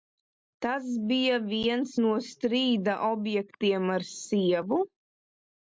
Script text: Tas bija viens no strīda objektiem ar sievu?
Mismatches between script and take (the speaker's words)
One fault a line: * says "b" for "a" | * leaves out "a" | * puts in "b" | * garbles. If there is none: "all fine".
all fine